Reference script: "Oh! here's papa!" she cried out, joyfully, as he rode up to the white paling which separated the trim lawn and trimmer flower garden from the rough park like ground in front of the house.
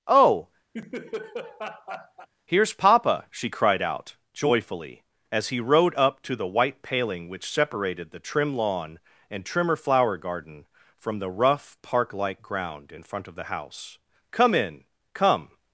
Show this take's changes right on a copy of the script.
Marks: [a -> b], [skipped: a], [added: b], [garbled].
"Oh! here's papa!" she cried out, joyfully, as he rode up to the white paling which separated the trim lawn and trimmer flower garden from the rough park like ground in front of the house. [added: Come in come]